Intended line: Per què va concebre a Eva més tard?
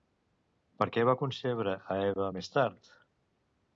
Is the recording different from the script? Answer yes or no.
no